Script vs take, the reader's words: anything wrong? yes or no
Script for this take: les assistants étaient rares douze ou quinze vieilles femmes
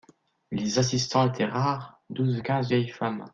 no